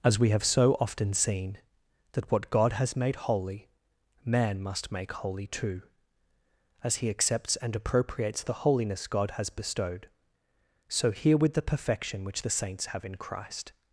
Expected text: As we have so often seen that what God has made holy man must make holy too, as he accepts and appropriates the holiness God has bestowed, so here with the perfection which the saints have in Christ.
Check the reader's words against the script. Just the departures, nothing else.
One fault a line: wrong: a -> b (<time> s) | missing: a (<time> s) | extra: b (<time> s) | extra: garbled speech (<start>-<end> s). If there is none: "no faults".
no faults